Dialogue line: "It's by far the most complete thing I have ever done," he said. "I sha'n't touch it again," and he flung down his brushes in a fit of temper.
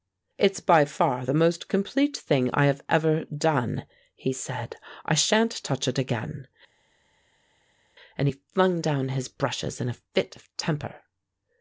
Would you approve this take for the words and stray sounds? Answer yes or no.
yes